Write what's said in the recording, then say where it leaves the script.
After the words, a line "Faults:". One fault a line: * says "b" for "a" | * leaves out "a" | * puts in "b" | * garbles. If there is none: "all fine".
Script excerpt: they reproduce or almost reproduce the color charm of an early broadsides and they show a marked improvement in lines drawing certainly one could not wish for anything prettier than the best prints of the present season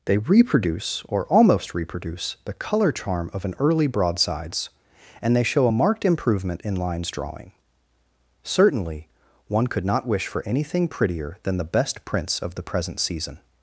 they reproduce or almost reproduce the color charm of an early broadsides and they show a marked improvement in lines drawing certainly one could not wish for anything prettier than the best prints of the present season
Faults:
all fine